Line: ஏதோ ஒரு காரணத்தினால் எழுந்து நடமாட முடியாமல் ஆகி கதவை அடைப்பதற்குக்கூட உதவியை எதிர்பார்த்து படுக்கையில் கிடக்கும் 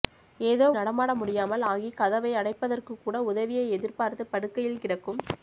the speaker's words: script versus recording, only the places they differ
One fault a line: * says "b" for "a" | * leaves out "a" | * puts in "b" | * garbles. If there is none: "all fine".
* leaves out "ஒரு காரணத்தினால் எழுந்து"